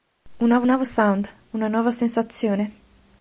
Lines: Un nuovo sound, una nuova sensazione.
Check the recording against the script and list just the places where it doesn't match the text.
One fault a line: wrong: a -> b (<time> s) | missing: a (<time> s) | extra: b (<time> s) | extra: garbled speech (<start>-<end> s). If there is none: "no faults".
extra: nuovo (0.7 s)